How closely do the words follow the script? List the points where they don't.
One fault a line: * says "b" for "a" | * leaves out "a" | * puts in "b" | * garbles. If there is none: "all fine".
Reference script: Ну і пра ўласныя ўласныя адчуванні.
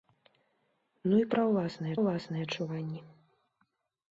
all fine